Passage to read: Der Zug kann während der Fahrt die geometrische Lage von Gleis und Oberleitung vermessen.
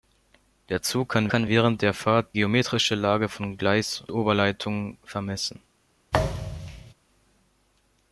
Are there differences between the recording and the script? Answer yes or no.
yes